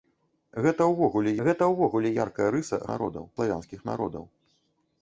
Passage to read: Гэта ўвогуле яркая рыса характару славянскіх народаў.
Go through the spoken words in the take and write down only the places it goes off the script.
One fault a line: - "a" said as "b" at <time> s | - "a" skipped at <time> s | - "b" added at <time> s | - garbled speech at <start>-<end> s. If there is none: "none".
- "гэта ўвогуле" added at 1.5 s
- "характару" said as "народаў" at 2.9 s